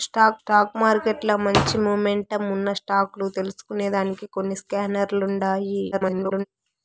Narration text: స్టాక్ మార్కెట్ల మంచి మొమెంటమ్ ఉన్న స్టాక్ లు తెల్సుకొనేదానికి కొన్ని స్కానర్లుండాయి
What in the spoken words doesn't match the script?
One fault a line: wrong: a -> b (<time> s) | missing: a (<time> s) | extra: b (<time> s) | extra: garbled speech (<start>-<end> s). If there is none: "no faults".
extra: స్టాక్ (0.4 s)
extra: garbled speech (5.9-6.4 s)